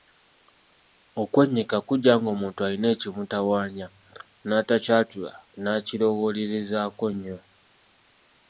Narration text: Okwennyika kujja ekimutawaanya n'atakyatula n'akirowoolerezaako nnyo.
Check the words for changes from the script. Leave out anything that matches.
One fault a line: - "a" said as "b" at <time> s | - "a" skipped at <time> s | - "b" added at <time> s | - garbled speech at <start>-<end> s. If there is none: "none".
- "ng'omuntu alina" added at 2.2 s